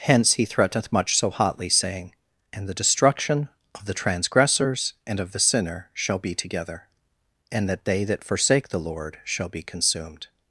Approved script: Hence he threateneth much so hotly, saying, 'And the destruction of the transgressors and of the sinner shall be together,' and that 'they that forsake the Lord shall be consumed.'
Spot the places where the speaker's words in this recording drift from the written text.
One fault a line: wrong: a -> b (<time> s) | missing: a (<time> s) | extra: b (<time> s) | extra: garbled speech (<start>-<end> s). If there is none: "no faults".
no faults